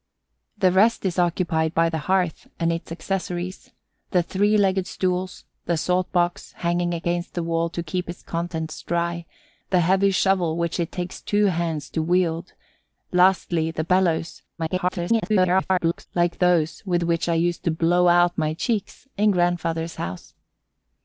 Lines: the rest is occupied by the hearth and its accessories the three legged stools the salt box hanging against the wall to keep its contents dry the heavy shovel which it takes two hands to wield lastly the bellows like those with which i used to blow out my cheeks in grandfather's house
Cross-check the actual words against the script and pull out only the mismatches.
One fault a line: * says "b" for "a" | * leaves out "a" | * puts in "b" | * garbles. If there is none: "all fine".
* garbles